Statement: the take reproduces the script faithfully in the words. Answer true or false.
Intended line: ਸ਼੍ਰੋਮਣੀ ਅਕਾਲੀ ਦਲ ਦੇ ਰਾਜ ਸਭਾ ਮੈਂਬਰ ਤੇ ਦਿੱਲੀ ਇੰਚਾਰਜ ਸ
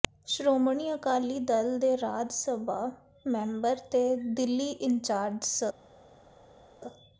true